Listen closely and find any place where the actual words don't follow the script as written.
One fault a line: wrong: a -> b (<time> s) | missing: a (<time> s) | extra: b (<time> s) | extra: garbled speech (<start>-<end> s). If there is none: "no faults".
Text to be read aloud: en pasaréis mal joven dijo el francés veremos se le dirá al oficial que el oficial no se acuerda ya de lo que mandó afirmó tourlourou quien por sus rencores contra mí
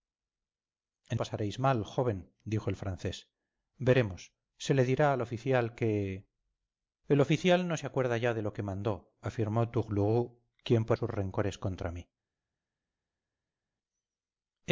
no faults